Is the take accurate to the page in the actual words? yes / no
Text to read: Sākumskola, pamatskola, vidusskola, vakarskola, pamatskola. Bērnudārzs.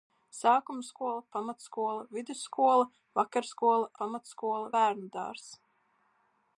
yes